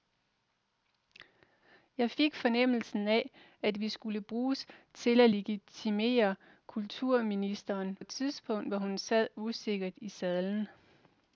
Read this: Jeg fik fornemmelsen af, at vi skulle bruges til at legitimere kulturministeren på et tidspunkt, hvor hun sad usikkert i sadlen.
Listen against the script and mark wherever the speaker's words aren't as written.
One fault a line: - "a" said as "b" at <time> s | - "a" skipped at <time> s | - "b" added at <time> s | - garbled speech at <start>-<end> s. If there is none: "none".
- "på" skipped at 8.0 s